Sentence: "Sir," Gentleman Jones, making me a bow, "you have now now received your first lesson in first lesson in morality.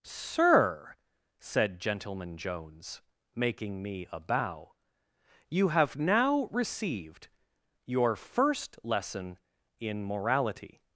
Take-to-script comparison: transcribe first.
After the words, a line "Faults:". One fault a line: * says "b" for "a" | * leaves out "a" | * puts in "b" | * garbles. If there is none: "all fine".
"Sir," said Gentleman Jones, making me a bow, "you have now received your first lesson in morality.
Faults:
* puts in "said"
* leaves out "now"
* leaves out "first lesson in"